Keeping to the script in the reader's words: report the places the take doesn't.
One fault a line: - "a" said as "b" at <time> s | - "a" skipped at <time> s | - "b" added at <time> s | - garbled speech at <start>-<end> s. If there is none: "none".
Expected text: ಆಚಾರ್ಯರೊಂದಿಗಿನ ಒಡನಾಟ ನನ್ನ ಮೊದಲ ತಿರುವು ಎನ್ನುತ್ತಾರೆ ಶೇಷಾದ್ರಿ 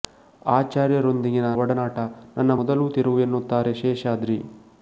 none